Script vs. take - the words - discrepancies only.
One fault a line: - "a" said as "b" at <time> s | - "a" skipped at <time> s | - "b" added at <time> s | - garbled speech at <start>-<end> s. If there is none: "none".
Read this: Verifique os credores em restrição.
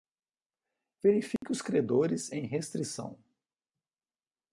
none